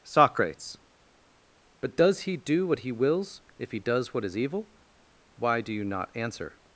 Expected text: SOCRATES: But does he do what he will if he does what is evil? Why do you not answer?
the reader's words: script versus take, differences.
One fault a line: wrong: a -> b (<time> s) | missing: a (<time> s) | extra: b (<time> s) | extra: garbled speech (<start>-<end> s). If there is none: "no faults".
wrong: will -> wills (2.9 s)